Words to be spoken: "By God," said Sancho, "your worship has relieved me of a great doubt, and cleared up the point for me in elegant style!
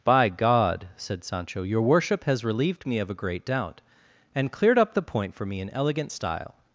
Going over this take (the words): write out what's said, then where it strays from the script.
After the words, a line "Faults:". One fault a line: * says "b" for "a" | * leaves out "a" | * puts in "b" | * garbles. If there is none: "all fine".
"By God," said Sancho, "your worship has relieved me of a great doubt, and cleared up the point for me in elegant style!
Faults:
all fine